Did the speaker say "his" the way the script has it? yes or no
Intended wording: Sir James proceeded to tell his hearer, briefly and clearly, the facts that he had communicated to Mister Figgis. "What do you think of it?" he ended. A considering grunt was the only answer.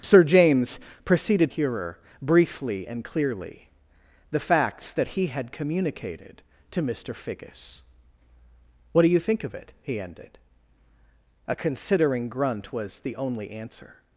no